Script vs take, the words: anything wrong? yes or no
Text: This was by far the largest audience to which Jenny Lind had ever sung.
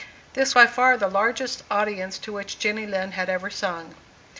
yes